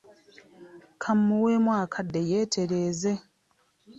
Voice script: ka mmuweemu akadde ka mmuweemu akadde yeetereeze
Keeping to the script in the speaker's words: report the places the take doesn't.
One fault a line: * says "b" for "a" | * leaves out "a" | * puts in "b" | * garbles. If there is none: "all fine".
* leaves out "ka mmuweemu akadde"